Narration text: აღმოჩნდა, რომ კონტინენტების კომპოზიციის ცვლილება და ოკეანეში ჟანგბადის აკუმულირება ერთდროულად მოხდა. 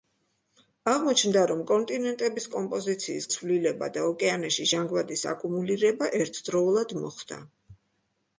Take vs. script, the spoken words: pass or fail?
pass